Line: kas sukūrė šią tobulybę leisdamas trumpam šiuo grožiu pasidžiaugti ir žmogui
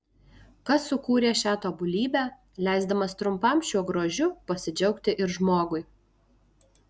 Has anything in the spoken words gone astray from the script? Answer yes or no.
no